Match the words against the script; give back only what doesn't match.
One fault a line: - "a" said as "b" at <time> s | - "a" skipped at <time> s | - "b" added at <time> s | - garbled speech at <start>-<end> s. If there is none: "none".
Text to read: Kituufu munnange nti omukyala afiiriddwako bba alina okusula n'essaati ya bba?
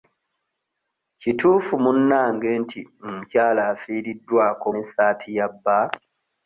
- "bba alina okusula" skipped at 4.7 s